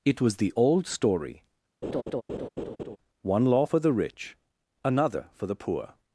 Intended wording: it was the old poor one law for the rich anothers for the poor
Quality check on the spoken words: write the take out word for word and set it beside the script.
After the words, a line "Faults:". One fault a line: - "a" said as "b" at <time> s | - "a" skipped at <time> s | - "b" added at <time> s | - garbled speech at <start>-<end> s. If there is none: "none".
it was the old story one law for the rich another for the poor
Faults:
- "poor" said as "story" at 0.9 s
- "anothers" said as "another" at 4.8 s